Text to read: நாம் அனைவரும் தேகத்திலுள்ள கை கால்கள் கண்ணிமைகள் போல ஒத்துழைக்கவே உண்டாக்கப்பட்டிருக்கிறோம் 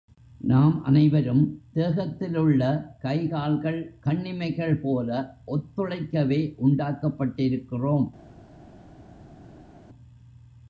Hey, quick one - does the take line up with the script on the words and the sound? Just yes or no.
yes